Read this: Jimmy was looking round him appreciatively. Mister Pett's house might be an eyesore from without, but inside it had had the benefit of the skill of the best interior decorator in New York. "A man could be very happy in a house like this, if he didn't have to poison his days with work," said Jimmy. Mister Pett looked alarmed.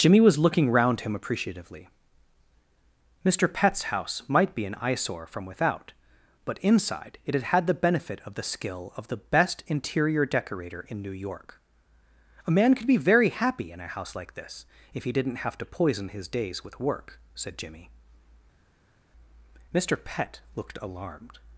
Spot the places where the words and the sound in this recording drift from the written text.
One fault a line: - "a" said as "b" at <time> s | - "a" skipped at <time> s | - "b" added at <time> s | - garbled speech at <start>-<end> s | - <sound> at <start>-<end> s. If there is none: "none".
none